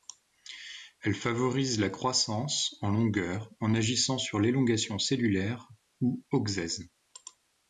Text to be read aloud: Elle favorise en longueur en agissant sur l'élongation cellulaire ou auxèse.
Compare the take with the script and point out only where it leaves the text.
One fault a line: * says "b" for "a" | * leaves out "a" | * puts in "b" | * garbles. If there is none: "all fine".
* puts in "la croissance"